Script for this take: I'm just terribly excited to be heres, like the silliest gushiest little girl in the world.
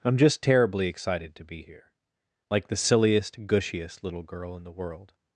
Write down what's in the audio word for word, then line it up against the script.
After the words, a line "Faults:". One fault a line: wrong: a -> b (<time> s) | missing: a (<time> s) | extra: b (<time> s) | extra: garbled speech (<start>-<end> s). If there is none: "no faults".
I'm just terribly excited to be here, like the silliest gushiest little girl in the world.
Faults:
wrong: heres -> here (1.6 s)